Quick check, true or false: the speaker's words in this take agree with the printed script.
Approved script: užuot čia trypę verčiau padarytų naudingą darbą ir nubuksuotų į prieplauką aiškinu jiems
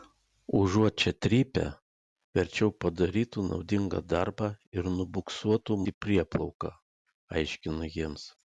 true